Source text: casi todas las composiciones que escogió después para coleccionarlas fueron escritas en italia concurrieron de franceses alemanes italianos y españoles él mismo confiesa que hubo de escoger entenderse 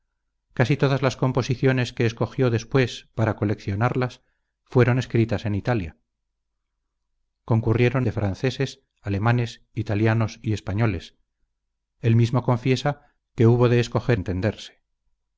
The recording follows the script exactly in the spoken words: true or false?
true